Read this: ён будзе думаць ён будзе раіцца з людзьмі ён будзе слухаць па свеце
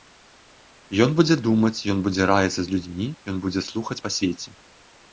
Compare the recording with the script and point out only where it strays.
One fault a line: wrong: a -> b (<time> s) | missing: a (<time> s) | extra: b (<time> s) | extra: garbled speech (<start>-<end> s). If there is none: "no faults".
no faults